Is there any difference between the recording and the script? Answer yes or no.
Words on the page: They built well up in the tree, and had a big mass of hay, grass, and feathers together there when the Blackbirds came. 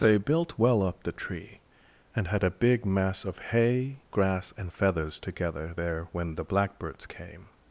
yes